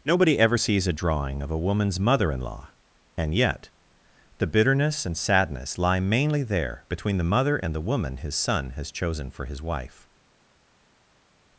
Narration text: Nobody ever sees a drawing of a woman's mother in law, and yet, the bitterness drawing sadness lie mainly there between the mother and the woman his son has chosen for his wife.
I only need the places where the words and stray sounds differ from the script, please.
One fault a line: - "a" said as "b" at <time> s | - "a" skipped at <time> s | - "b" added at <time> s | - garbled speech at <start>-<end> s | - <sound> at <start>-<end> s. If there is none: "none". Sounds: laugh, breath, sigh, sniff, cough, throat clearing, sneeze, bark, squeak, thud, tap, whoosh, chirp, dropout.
- "drawing" said as "and" at 5.1 s